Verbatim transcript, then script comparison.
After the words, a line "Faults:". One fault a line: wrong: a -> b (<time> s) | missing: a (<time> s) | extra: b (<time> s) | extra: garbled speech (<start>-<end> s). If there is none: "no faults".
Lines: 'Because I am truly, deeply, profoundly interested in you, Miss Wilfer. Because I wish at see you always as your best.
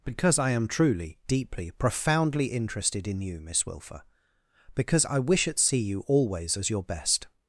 'Because I am truly, deeply, profoundly interested in you, Miss Wilfer. Because I wish at see you always as your best.
Faults:
no faults